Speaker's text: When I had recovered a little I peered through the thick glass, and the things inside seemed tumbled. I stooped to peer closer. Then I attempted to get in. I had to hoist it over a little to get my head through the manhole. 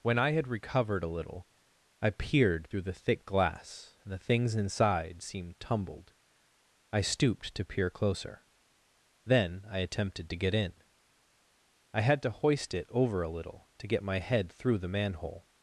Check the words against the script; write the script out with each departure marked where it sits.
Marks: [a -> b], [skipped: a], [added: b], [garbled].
When I had recovered a little I peered through the thick glass, and the things inside seemed tumbled. I stooped to peer closer. Then I attempted to get in. I had to hoist it over a little to get my head through the manhole.